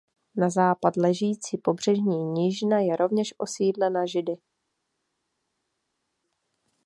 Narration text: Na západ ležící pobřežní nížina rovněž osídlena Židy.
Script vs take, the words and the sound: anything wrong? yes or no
yes